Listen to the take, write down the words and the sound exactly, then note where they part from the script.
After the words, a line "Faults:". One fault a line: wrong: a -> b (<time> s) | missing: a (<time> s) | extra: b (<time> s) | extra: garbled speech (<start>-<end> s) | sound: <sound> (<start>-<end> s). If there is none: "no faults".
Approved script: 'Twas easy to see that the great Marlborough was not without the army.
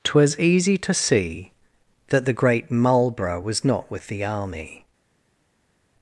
'Twas easy to see that the great Marlborough was not with the army.
Faults:
wrong: without -> with (3.9 s)